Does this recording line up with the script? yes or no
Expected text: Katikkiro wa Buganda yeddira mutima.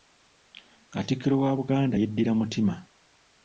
yes